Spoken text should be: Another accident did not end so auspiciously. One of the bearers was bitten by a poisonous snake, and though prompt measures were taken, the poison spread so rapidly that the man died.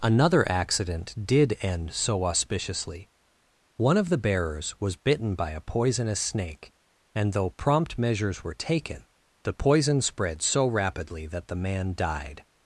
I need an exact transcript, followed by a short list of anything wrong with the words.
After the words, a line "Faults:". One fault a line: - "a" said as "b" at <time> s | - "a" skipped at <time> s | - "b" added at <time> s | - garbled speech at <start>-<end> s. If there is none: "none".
Another accident did end so auspiciously. One of the bearers was bitten by a poisonous snake, and though prompt measures were taken, the poison spread so rapidly that the man died.
Faults:
- "not" skipped at 1.6 s